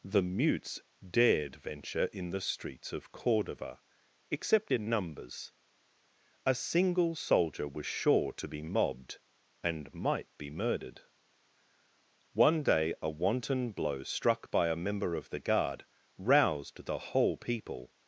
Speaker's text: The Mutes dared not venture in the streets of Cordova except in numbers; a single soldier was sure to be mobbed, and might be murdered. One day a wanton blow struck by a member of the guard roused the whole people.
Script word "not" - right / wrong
wrong